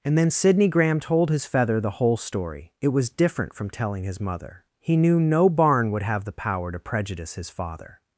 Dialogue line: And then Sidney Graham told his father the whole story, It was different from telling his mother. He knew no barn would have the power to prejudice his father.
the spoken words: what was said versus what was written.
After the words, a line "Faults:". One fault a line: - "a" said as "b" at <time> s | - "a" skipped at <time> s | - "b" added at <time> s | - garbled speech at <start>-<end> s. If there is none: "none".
And then Sidney Graham told his feather the whole story, It was different from telling his mother. He knew no barn would have the power to prejudice his father.
Faults:
- "father" said as "feather" at 1.4 s